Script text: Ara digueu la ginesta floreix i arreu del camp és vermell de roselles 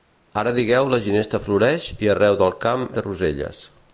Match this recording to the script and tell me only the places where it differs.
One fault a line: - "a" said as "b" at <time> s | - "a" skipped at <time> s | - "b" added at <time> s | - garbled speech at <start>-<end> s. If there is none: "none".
- "és vermell" skipped at 2.9 s